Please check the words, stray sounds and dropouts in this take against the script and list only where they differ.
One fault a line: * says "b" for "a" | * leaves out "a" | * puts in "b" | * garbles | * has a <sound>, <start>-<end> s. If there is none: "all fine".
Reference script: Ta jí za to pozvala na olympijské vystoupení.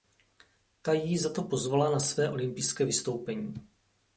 * puts in "své"